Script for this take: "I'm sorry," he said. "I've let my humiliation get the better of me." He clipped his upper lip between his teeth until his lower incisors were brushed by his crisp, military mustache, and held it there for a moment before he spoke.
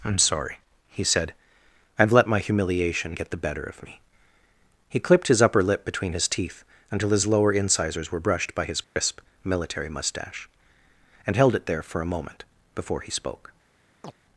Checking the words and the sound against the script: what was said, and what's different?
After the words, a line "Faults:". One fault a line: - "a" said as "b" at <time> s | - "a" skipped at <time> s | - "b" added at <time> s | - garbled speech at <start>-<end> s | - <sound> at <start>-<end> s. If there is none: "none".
"I'm sorry," he said. "I've let my humiliation get the better of me." He clipped his upper lip between his teeth until his lower incisors were brushed by his crisp, military mustache, and held it there for a moment before he spoke.
Faults:
- dropout at 8.8-9.0 s
- chirp at 14.0-14.1 s